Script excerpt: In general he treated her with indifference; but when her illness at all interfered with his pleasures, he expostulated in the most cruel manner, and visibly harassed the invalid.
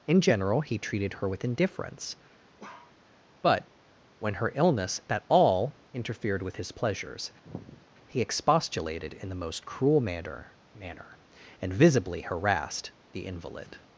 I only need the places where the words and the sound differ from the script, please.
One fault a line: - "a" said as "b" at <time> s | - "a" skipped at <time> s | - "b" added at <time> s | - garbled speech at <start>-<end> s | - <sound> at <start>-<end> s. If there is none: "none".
- bark at 2.6-3.0 s
- sigh at 7.5-7.9 s
- "manner" added at 10.7 s